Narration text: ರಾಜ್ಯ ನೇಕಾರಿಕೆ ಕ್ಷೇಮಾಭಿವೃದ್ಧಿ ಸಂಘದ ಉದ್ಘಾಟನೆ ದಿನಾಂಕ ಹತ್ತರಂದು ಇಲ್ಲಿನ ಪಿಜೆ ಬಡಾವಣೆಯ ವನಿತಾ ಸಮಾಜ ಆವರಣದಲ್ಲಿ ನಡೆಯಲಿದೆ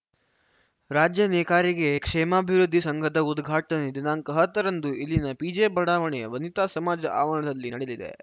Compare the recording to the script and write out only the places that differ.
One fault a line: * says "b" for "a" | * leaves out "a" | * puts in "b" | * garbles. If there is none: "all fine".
all fine